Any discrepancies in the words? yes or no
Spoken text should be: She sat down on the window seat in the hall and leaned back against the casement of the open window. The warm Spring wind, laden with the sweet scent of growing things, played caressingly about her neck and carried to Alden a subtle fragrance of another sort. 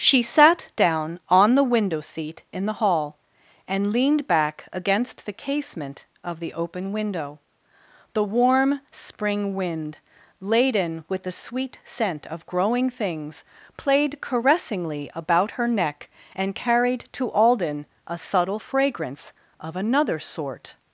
no